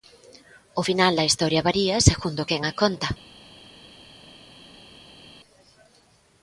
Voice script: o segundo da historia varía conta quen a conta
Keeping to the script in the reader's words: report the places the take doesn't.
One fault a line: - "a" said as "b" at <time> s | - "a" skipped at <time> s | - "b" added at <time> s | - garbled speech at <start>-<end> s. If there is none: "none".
- "segundo" said as "final" at 0.9 s
- "conta" said as "segundo" at 2.1 s